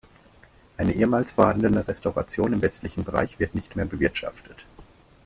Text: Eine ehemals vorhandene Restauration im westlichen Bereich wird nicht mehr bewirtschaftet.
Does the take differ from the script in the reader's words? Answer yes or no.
no